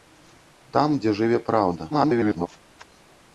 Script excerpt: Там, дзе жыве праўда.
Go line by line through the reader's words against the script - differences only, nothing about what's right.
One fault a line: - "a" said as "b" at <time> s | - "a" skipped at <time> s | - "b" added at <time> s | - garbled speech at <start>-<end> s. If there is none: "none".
- garbled speech at 1.9-2.5 s